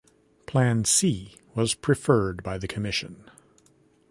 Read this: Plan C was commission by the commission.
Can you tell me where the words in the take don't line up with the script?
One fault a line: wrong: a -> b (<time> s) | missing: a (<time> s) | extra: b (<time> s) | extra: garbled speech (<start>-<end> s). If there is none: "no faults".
wrong: commission -> preferred (1.8 s)